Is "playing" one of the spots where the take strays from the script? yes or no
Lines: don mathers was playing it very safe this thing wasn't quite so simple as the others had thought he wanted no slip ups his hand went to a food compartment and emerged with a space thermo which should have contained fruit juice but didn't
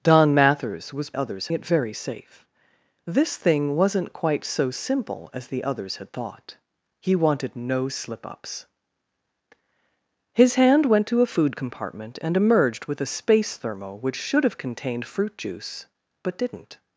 yes